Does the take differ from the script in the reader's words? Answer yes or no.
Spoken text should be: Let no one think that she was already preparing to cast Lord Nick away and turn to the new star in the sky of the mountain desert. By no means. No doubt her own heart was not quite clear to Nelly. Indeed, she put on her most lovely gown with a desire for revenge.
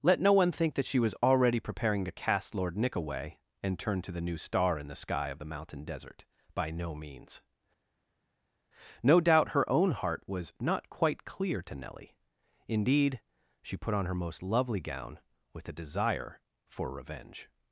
no